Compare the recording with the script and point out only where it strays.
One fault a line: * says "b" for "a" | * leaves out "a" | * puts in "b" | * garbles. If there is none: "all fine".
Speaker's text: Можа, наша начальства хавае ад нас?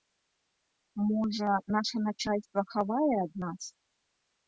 all fine